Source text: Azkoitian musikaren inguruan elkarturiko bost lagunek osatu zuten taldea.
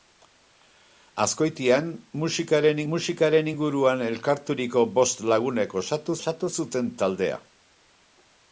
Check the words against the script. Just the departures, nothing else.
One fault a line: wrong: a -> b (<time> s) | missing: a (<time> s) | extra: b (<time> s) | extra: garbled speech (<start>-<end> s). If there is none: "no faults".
extra: musikaren (2.9 s)
extra: osatu (6.2 s)